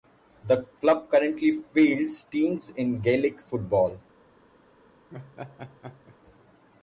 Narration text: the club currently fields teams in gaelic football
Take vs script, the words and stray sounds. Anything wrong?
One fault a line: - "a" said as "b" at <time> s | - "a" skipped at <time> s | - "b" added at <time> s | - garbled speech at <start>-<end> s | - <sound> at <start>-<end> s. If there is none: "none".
- laugh at 5.1-6.2 s